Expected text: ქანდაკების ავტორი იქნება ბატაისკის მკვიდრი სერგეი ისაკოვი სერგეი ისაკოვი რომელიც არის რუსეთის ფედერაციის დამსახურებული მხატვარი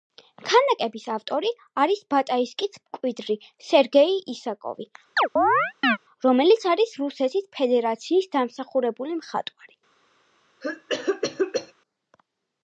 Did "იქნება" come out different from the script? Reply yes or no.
yes